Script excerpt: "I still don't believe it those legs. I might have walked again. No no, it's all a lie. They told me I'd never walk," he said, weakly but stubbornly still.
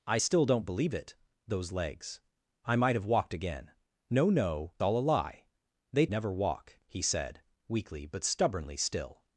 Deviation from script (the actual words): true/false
true